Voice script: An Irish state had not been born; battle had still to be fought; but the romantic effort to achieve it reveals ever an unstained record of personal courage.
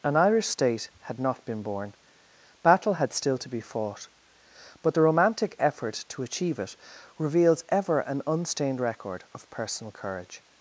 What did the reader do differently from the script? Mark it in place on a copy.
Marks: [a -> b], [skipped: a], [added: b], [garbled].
An Irish state had not been born; battle had still to be fought; but the romantic effort to achieve it reveals ever an unstained record of personal courage.